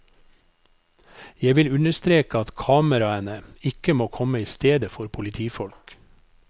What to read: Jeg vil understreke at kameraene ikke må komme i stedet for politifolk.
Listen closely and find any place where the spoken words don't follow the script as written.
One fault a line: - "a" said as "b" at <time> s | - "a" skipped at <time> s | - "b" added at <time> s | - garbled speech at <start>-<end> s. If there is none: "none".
none